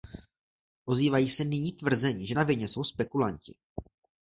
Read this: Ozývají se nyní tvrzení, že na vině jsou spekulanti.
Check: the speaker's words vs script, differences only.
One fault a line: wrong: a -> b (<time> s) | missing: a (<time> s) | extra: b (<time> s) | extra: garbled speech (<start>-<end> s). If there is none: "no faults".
no faults